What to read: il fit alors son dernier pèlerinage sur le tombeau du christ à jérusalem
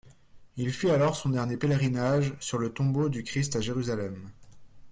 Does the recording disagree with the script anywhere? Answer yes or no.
no